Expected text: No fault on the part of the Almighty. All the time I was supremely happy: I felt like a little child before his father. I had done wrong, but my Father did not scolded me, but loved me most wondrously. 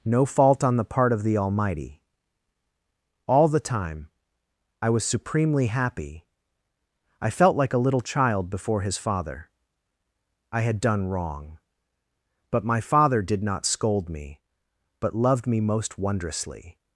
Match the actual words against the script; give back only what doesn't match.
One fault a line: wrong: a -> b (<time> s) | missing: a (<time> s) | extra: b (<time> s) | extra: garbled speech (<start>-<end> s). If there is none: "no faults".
wrong: scolded -> scold (13.7 s)